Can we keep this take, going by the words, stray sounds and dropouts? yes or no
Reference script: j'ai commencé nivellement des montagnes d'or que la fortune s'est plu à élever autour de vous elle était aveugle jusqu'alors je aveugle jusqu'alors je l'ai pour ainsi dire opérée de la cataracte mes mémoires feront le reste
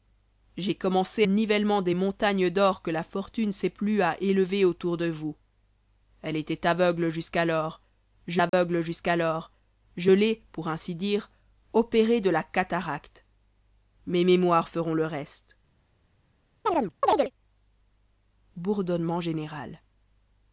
no